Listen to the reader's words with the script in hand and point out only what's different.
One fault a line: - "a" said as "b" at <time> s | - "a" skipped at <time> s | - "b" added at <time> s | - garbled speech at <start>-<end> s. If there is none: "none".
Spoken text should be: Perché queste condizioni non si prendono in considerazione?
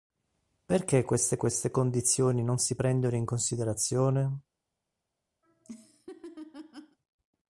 - "queste" added at 1.3 s